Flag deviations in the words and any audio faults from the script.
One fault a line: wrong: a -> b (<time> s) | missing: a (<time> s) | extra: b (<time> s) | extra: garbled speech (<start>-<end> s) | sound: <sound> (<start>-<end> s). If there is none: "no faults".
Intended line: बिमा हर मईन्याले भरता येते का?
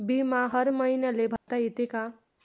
sound: dropout (1.4-1.5 s)